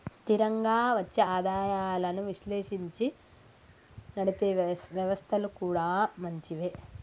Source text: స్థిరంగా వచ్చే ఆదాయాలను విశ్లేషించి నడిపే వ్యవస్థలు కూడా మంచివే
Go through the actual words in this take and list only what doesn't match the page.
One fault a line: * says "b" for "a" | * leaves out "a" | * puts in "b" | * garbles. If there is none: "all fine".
all fine